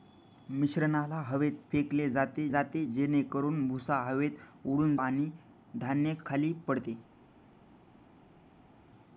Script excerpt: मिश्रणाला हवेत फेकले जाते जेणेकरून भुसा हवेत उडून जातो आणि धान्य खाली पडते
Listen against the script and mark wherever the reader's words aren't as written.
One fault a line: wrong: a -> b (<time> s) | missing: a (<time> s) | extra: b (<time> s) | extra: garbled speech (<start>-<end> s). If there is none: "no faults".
extra: जाते (2.5 s)
missing: जातो (5.0 s)